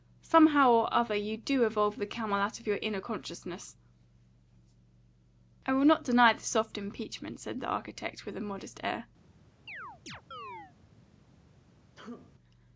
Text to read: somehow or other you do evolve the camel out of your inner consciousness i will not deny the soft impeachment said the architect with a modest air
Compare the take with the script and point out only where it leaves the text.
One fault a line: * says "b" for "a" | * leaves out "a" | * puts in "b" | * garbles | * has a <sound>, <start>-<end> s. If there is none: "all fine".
* has a chirp, 9.7-10.7 s
* has a sneeze, 12.0-12.3 s